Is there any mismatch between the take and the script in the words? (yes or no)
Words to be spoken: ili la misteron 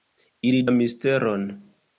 no